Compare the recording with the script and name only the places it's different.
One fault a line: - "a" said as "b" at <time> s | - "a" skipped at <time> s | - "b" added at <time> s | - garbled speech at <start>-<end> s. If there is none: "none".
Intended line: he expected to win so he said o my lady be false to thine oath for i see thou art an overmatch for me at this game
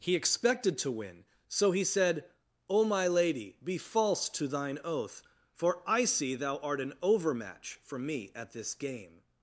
none